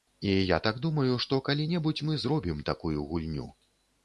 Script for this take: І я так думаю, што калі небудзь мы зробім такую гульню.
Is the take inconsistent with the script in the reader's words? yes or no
no